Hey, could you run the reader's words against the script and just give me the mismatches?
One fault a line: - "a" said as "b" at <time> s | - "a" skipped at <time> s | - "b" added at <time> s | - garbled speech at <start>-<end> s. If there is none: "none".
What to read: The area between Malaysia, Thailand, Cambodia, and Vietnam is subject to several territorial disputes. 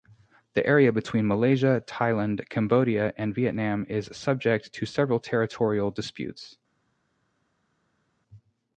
none